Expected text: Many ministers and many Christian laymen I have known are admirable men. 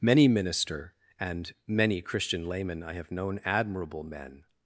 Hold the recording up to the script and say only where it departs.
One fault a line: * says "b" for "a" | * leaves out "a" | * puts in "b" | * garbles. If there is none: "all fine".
* says "minister" for "ministers"
* leaves out "are"